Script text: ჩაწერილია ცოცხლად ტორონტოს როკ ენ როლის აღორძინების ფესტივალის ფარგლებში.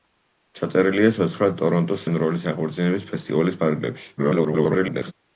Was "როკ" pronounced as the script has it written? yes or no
no